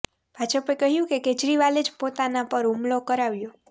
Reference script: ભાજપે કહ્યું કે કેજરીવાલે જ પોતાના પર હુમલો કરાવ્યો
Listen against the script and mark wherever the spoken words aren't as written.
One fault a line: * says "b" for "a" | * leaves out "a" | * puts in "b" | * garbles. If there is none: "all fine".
all fine